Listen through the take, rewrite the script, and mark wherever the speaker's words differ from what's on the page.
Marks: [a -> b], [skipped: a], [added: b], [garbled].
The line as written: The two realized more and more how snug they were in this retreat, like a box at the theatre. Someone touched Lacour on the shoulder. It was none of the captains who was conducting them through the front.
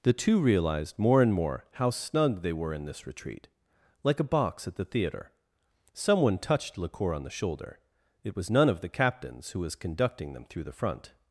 The two realized more and more how snug they were in this retreat, like a box at the theatre. Someone touched Lacour on the shoulder. It was none of the captains who was conducting them through the front.